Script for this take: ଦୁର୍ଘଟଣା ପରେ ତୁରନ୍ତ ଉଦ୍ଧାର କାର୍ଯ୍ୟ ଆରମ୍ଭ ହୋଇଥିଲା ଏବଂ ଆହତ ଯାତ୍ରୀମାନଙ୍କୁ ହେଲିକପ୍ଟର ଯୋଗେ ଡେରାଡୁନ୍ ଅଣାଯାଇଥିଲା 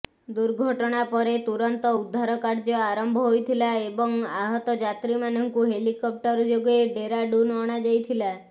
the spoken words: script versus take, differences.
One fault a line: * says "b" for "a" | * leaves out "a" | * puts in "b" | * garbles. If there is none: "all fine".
all fine